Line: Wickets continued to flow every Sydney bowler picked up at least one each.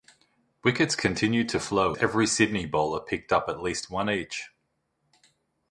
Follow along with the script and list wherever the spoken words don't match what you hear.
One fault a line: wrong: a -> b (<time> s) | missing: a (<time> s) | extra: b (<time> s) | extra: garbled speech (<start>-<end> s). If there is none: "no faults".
no faults